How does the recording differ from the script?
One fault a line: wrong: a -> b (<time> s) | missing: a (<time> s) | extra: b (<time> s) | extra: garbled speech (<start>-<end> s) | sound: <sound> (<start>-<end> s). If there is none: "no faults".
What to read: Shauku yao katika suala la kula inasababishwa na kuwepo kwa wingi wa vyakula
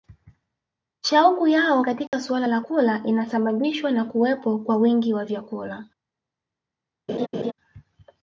sound: dropout (2.1-2.1 s)
sound: laugh (7.1-7.5 s)